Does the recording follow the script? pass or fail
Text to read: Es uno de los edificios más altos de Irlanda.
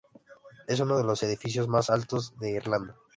pass